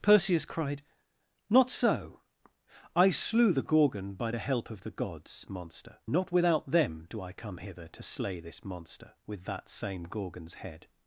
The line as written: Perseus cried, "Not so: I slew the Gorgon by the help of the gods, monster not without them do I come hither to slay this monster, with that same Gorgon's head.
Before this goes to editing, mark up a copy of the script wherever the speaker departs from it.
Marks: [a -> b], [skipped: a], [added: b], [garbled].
Perseus cried, "Not so: I slew the Gorgon by the help of the gods, monster not without them do I come hither to slay this monster, with that same Gorgon's head.